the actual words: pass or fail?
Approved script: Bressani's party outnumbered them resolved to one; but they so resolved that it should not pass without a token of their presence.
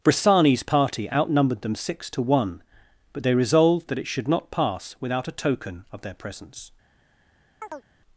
fail